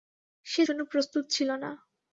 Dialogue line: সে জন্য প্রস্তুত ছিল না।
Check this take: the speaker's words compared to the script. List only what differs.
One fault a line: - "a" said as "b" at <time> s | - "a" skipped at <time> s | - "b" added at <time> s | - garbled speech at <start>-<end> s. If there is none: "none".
none